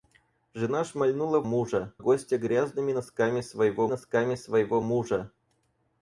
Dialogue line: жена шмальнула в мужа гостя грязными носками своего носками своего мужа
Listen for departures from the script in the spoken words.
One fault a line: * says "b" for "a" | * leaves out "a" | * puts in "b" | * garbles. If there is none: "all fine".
all fine